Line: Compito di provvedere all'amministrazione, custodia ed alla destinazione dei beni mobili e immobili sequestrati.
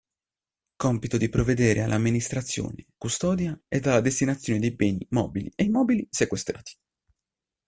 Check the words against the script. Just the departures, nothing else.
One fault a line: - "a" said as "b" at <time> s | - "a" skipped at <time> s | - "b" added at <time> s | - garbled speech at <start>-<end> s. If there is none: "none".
none